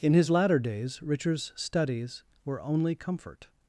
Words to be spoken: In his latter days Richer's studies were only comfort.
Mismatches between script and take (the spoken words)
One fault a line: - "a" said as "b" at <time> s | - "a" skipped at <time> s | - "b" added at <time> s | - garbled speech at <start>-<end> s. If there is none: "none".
none